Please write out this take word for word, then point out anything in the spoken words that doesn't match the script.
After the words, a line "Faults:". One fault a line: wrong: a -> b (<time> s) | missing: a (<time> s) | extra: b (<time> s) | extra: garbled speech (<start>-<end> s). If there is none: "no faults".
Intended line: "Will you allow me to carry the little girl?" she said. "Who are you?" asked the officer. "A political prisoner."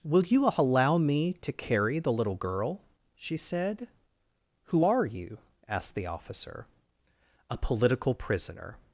"Will you allow me to carry the little girl?" she said. "Who are you?" asked the officer. "A political prisoner."
Faults:
no faults